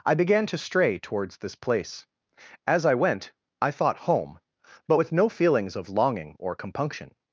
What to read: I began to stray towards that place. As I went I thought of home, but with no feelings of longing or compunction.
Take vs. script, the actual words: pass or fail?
fail